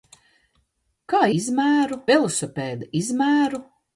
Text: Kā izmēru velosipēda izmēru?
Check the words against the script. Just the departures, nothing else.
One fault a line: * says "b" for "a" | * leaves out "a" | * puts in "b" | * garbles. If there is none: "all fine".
all fine